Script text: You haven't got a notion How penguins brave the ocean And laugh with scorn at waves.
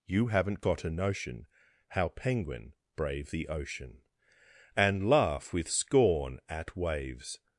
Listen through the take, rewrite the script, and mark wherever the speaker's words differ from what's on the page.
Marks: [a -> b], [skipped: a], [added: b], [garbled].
You haven't got a notion How [penguins -> penguin] brave the ocean And laugh with scorn at waves.